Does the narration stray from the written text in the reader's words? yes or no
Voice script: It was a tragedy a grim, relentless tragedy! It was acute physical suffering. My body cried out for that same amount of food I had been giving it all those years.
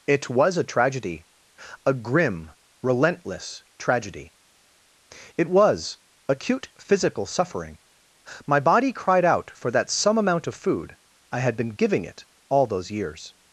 yes